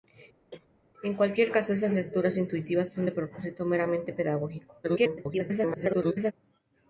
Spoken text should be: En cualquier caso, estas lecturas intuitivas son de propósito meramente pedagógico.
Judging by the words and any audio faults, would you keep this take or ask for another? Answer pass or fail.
fail